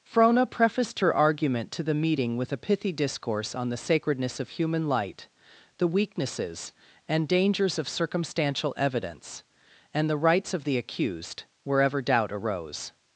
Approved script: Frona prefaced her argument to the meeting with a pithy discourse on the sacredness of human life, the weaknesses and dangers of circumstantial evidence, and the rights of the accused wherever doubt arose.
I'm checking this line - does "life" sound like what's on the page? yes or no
no